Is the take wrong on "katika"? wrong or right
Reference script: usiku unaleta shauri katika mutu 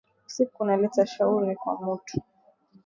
wrong